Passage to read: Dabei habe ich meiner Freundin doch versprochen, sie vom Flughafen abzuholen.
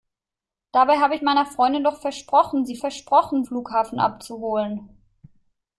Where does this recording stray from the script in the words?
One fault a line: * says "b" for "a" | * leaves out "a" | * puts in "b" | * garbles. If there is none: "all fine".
* says "versprochen" for "vom"